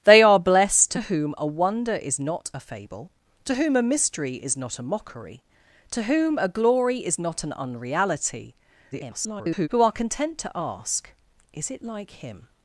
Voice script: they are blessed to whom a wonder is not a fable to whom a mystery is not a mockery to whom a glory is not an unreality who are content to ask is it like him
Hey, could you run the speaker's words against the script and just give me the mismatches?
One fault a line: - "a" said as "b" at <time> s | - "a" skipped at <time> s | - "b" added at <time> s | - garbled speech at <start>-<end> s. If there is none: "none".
- garbled speech at 8.9-9.7 s